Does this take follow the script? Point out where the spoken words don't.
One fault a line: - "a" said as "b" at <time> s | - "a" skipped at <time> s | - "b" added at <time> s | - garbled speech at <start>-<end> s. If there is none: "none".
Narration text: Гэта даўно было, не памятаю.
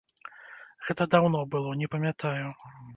none